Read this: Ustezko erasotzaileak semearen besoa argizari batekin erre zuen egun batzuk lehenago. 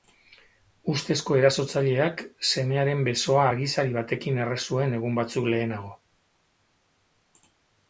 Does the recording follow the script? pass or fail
pass